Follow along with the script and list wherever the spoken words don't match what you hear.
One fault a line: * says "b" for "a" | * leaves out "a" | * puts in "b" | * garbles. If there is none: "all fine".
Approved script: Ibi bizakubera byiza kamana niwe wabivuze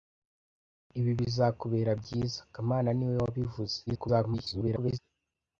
* garbles